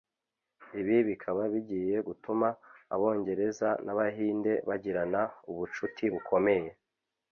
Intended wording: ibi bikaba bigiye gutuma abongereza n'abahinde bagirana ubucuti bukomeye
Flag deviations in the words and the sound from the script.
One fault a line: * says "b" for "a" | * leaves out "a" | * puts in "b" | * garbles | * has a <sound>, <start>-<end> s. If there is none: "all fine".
all fine